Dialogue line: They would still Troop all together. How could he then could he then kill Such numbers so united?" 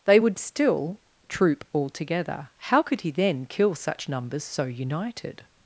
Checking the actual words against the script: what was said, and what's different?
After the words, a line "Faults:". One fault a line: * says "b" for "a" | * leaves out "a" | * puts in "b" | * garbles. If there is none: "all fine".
They would still Troop all together. How could he then kill Such numbers so united?"
Faults:
* leaves out "could he then"